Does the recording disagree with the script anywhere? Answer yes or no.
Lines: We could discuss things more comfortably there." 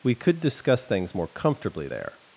no